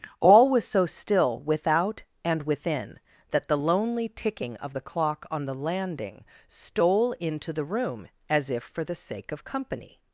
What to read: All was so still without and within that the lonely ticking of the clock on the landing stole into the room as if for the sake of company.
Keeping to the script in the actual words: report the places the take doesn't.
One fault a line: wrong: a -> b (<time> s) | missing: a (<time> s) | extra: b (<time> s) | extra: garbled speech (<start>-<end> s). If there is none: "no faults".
no faults